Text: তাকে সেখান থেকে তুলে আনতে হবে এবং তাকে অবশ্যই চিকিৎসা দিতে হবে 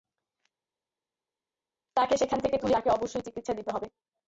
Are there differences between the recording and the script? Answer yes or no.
yes